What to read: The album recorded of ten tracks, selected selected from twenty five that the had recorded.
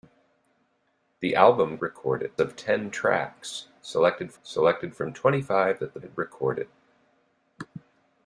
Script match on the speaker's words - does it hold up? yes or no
yes